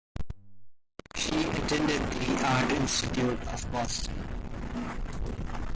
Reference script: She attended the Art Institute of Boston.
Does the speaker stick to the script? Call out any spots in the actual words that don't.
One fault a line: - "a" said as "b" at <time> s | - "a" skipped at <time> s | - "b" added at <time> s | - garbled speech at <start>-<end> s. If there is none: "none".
none